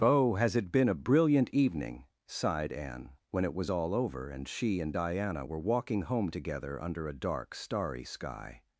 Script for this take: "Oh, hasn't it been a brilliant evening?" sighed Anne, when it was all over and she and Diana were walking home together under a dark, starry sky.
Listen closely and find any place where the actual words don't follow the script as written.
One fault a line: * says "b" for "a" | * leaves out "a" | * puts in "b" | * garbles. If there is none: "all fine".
* says "has" for "hasn't"